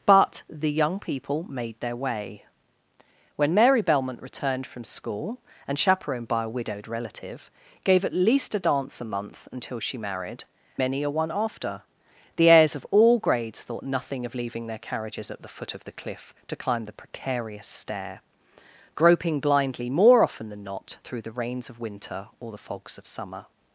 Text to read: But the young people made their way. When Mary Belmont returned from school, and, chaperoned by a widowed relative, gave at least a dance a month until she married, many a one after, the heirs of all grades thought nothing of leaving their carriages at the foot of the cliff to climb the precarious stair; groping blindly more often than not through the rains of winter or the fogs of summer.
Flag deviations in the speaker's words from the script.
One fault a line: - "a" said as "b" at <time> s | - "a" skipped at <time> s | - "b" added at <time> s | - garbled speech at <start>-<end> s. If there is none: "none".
none